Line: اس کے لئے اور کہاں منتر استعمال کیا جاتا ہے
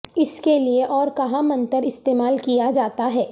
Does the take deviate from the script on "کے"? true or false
false